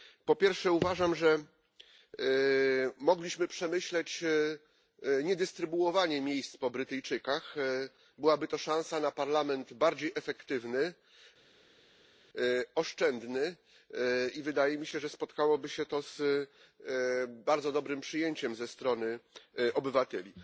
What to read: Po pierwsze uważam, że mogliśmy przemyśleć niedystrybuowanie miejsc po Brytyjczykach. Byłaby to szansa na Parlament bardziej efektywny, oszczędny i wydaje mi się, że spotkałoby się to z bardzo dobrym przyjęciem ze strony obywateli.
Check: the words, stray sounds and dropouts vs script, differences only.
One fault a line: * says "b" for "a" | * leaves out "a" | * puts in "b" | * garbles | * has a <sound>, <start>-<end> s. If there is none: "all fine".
all fine